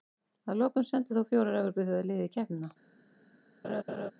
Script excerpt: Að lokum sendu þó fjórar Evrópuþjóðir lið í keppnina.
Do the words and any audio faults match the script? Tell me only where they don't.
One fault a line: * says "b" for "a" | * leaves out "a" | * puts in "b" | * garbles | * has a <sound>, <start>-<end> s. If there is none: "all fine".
* has a laugh, 3.6-4.1 s